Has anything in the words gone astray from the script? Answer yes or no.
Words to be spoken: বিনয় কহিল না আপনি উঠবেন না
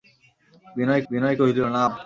yes